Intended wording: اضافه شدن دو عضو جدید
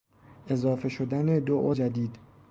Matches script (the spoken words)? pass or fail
fail